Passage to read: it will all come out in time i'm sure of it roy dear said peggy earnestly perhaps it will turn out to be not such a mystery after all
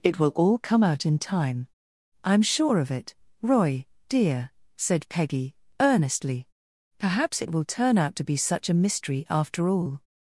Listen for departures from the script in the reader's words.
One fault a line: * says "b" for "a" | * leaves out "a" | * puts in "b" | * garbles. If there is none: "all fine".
* leaves out "not"